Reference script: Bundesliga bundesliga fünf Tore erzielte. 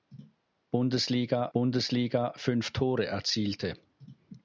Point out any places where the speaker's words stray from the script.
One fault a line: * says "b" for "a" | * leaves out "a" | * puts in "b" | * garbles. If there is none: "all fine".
all fine